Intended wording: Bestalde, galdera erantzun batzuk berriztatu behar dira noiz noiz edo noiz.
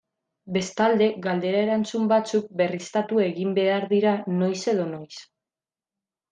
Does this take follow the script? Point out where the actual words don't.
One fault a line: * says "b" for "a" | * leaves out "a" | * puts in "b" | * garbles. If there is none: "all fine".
* puts in "egin"
* leaves out "noiz"